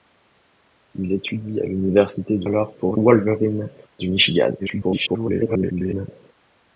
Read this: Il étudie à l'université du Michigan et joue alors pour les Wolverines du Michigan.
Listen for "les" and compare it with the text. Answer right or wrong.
wrong